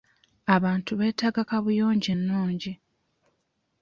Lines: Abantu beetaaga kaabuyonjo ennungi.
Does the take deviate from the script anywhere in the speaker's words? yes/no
no